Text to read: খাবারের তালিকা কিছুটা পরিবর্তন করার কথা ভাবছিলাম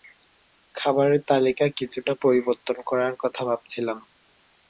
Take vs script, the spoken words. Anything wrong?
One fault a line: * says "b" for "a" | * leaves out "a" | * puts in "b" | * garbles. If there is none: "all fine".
all fine